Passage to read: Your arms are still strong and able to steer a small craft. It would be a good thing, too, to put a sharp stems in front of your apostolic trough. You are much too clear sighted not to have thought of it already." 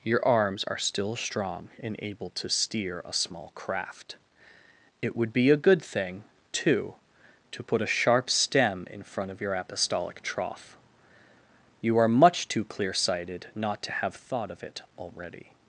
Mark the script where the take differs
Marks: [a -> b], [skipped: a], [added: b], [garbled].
Your arms are still strong and able to steer a small craft. It would be a good thing, too, to put a sharp [stems -> stem] in front of your apostolic trough. You are much too clear sighted not to have thought of it already."